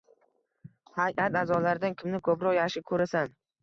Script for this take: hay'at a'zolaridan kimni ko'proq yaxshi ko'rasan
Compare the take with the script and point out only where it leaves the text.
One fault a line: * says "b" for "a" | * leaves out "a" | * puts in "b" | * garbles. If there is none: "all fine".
all fine